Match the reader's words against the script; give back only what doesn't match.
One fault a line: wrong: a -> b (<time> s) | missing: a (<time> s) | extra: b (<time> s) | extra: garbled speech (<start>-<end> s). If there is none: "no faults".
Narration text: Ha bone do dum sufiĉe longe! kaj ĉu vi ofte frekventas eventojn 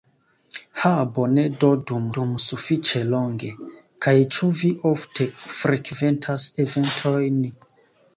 extra: dum (2.2 s)